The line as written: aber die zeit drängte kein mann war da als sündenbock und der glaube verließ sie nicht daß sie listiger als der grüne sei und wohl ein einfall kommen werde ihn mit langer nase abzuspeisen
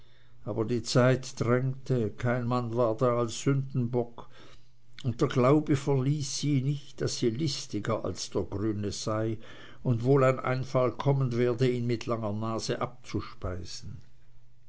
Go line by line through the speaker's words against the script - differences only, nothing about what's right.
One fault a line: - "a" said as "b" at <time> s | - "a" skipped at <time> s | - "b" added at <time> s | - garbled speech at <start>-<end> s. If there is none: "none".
none